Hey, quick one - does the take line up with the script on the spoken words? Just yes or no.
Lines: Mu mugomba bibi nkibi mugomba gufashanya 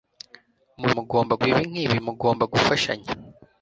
yes